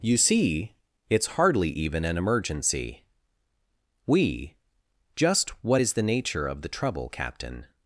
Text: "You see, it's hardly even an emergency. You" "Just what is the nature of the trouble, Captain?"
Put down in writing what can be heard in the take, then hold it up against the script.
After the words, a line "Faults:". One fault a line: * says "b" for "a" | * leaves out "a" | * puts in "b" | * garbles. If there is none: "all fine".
"You see, it's hardly even an emergency. We" "Just what is the nature of the trouble, Captain?"
Faults:
* says "We" for "You"